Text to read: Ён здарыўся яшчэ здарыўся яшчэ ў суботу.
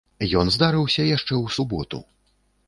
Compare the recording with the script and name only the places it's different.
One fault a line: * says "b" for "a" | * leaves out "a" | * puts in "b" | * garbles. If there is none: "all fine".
* leaves out "здарыўся яшчэ"